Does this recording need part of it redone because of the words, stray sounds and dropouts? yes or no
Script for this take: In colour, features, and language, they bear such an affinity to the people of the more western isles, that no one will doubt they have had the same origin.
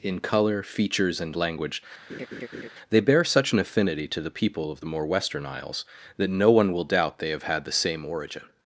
yes